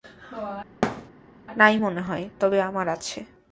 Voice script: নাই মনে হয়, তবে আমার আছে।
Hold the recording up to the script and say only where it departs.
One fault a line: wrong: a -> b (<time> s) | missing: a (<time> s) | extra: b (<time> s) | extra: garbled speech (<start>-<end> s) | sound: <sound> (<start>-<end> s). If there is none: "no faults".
sound: thud (0.8-1.1 s)